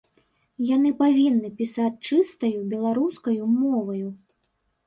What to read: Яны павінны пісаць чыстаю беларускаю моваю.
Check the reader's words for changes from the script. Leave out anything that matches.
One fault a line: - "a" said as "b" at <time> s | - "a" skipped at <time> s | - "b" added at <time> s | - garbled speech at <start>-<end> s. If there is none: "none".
none